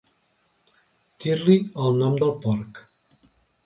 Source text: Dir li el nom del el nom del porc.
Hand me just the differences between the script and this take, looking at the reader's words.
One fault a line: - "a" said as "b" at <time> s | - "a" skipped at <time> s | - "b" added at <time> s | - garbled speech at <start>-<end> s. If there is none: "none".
- "el nom del" skipped at 2.3 s